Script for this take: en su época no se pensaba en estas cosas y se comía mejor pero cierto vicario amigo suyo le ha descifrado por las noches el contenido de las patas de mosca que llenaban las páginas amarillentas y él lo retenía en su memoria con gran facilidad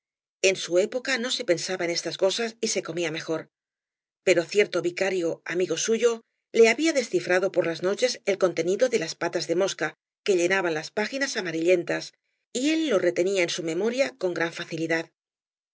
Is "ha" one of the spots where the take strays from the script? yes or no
yes